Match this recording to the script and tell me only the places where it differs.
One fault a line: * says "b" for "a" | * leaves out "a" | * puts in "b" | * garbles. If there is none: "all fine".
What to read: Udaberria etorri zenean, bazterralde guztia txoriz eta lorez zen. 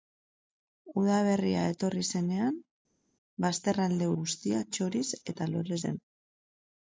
all fine